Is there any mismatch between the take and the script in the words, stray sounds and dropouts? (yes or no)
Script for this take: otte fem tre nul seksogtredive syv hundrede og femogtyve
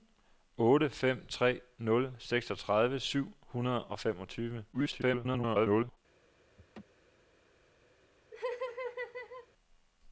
yes